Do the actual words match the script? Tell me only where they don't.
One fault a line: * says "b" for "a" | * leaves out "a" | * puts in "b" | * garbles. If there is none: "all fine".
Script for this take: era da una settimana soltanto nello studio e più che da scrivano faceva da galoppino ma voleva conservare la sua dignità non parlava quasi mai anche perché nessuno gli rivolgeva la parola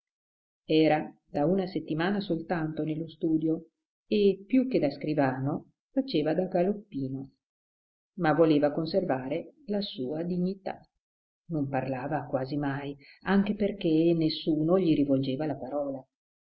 all fine